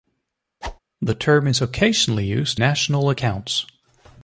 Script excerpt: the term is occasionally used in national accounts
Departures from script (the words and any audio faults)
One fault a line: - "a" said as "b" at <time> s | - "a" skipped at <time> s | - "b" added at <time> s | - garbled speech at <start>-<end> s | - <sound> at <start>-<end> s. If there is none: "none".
- whoosh at 0.6-0.8 s
- "in" skipped at 2.6 s